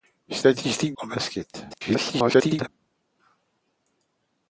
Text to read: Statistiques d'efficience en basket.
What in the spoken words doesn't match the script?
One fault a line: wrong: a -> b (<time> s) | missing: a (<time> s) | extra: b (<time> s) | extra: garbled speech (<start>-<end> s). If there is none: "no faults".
missing: d'efficience (0.9 s)
extra: garbled speech (1.7-2.7 s)